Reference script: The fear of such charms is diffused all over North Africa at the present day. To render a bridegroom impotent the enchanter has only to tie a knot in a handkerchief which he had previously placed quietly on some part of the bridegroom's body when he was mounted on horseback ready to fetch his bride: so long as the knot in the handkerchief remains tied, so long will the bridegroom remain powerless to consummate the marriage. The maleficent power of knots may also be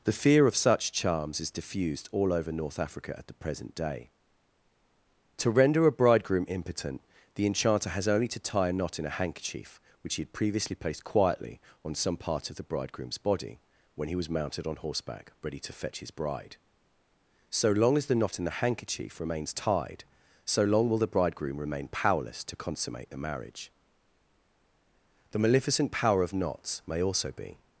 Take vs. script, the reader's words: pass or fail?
pass